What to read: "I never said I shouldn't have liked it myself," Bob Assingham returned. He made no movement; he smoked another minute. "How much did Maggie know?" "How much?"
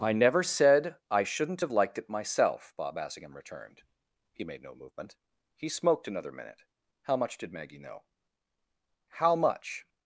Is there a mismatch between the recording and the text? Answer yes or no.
no